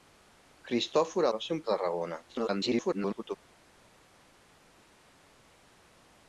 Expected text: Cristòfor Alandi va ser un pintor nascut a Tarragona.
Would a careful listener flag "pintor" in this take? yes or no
yes